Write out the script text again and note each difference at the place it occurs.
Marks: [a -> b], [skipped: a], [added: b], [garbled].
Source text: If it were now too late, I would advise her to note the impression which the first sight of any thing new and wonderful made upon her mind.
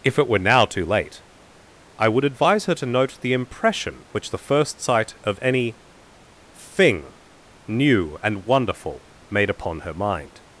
If it were now too late, I would advise her to note the impression which the first sight of any thing new and wonderful made upon her mind.